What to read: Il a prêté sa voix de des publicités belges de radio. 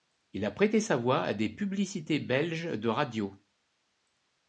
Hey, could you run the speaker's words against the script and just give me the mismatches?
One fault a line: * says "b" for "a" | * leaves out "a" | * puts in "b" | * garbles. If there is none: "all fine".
* says "à" for "de"